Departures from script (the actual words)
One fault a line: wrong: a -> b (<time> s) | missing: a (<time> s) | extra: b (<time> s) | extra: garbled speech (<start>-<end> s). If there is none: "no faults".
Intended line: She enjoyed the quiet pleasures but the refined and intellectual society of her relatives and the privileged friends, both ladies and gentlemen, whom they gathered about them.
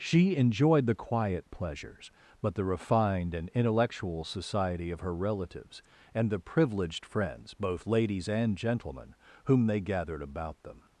no faults